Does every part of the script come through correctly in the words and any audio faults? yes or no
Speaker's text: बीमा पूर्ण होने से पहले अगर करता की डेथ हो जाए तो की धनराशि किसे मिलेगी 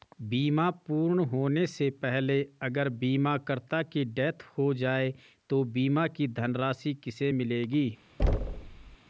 no